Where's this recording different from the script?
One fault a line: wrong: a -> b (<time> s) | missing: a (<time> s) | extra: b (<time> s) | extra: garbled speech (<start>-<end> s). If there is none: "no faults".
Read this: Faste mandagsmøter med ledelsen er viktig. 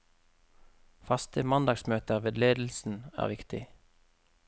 no faults